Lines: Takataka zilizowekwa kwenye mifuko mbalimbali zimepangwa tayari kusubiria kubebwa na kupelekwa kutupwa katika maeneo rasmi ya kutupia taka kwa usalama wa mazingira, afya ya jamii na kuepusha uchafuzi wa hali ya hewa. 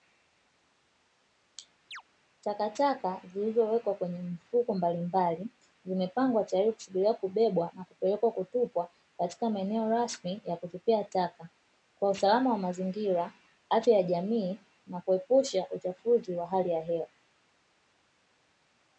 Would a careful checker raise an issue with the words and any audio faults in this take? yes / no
yes